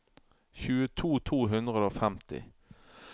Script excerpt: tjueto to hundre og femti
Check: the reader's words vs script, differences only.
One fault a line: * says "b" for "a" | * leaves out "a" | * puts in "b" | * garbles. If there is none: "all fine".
all fine